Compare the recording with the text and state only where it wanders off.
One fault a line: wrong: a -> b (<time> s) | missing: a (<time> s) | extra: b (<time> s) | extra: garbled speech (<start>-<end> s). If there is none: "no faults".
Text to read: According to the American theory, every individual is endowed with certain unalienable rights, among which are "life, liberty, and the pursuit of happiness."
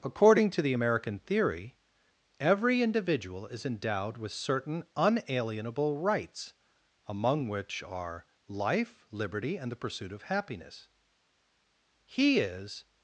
extra: He is (12.1 s)